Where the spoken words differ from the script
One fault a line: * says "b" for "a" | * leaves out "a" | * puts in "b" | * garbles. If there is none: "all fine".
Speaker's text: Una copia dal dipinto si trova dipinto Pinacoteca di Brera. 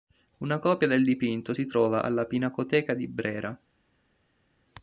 * says "del" for "dal"
* says "alla" for "dipinto"